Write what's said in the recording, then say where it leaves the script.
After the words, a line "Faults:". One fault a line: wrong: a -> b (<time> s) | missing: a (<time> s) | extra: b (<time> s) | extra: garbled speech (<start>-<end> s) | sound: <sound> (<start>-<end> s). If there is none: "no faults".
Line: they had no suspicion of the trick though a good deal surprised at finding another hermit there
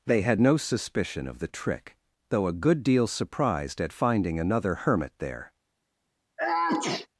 they had no suspicion of the trick though a good deal surprised at finding another hermit there
Faults:
sound: sneeze (6.4-7.1 s)